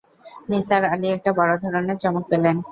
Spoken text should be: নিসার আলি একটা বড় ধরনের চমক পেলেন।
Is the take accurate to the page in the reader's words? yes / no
yes